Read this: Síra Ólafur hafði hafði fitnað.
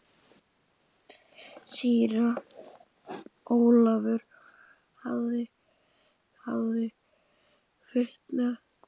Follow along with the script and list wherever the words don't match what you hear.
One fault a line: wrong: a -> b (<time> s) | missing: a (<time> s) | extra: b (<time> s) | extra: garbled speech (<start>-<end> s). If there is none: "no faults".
no faults